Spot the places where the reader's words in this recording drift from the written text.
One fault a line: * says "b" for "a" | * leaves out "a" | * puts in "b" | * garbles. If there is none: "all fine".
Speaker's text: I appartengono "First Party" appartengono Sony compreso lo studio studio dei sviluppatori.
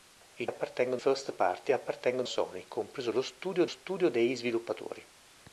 all fine